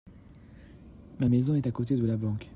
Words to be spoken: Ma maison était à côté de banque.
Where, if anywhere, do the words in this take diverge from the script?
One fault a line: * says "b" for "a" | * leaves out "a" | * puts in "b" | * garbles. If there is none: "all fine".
* says "est" for "était"
* puts in "la"